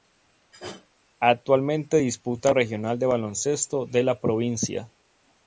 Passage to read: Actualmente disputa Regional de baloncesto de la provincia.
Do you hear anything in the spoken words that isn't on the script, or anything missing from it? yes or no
no